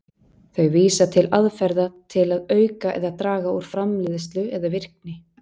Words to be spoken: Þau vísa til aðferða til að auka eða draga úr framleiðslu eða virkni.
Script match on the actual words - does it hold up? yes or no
yes